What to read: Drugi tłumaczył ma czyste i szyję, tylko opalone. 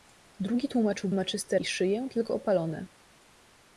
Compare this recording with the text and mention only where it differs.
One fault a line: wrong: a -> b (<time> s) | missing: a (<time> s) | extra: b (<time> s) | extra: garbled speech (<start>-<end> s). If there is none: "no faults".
no faults